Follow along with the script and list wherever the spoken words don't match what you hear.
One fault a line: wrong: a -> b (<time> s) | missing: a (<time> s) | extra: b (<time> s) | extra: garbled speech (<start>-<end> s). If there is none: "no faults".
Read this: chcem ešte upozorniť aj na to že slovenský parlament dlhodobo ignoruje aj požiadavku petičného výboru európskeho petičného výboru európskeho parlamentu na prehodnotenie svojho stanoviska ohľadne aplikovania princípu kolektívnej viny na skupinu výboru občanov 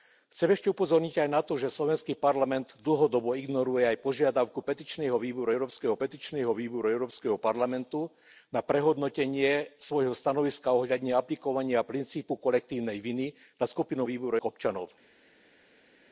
no faults